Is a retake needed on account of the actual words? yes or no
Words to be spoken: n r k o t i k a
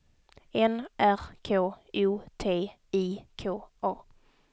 no